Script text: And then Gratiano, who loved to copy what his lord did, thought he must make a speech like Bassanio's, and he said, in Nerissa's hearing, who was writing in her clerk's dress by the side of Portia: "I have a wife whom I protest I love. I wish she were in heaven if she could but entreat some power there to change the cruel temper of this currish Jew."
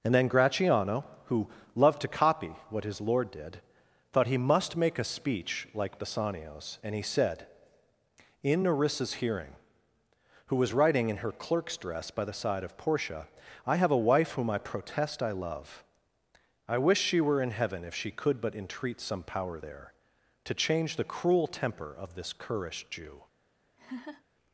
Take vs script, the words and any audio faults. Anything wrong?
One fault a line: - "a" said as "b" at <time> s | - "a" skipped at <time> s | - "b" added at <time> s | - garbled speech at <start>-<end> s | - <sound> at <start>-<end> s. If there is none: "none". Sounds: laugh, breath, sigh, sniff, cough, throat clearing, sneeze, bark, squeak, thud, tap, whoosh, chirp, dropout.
- laugh at 23.8-24.2 s